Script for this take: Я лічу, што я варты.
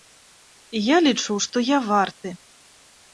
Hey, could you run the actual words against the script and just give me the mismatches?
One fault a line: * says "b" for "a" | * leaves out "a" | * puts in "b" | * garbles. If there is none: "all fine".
all fine